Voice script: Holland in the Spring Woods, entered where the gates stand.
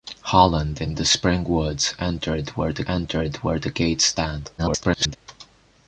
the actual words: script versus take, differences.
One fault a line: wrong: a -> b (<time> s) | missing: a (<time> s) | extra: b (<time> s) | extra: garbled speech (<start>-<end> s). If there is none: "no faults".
extra: entered where the (2.9 s)
extra: garbled speech (4.6-5.2 s)